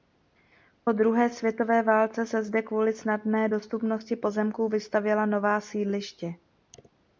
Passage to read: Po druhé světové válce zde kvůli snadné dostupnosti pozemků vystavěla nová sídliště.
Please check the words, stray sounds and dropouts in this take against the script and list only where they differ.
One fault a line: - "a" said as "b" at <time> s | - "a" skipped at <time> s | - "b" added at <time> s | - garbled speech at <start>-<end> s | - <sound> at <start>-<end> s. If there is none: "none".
- "se" added at 2.2 s